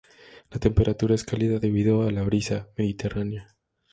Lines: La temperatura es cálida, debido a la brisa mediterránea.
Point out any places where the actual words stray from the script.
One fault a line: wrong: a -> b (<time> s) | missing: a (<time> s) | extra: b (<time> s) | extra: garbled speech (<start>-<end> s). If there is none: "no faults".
no faults